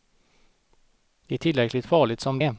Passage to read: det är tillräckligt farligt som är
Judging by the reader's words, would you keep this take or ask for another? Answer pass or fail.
pass